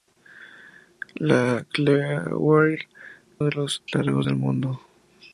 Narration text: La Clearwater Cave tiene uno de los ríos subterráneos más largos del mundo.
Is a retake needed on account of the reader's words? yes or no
yes